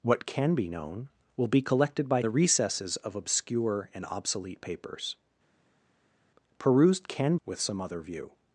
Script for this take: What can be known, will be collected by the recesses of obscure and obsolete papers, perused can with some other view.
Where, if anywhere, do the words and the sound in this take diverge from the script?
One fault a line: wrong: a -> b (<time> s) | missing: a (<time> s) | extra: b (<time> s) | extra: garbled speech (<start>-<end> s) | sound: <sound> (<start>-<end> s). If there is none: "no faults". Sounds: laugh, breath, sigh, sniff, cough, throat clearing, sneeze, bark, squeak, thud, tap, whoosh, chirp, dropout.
no faults